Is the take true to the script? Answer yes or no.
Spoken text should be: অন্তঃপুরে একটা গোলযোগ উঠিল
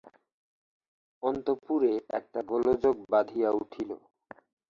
no